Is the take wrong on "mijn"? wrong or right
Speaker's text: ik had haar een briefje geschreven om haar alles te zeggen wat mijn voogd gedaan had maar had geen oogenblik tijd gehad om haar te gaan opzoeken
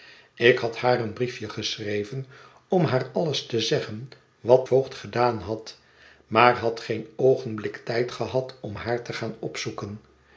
wrong